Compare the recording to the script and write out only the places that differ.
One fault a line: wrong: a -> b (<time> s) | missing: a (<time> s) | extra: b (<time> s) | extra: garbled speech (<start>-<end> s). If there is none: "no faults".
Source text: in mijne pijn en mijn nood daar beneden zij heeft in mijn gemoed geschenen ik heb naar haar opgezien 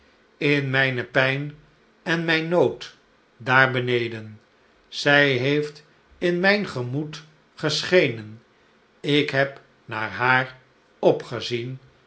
no faults